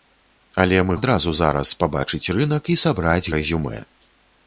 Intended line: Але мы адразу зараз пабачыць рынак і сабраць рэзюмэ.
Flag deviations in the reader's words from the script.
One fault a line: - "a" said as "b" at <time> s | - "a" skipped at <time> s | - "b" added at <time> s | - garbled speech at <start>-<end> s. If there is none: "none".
none